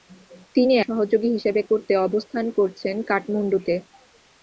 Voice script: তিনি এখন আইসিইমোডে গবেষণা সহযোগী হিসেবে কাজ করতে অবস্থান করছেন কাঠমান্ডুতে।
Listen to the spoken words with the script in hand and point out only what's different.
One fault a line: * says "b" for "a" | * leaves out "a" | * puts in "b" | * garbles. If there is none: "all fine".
* leaves out "এখন আইসিইমোডে গবেষণা"
* leaves out "কাজ"